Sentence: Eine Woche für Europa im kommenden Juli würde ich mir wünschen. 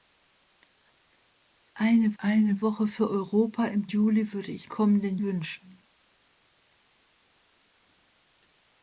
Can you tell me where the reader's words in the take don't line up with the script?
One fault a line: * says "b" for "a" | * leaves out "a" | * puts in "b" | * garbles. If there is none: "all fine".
* puts in "eine"
* leaves out "kommenden"
* says "kommenden" for "mir"